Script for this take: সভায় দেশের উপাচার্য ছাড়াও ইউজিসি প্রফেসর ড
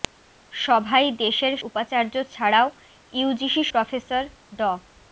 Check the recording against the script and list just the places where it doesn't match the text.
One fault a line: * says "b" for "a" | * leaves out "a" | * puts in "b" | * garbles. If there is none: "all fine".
all fine